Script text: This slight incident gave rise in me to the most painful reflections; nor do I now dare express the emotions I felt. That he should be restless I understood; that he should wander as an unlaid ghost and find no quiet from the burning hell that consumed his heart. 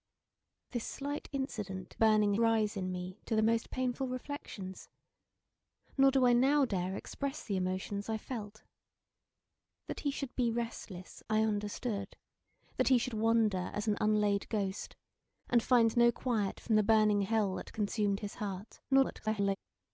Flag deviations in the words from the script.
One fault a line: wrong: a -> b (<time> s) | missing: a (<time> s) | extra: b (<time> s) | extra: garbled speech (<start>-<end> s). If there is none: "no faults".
wrong: gave -> burning (2.0 s)
extra: garbled speech (18.9-19.6 s)